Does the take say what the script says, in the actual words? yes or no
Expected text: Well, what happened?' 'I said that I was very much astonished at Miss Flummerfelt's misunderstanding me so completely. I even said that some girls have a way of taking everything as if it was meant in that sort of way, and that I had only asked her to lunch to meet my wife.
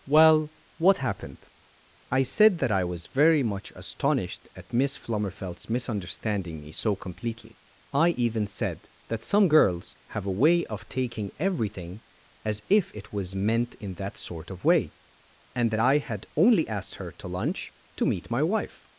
yes